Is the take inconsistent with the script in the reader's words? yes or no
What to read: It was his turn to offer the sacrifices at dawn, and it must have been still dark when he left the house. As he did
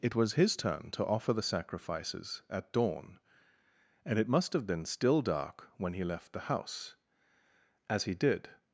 no